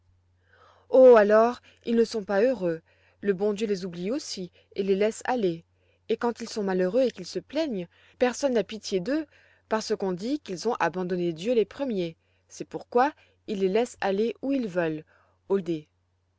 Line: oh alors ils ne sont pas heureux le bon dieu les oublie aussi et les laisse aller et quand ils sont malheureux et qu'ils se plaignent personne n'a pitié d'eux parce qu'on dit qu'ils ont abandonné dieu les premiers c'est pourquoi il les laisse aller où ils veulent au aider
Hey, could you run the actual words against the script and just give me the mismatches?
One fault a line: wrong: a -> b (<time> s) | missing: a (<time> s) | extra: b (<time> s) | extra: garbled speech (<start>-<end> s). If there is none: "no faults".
no faults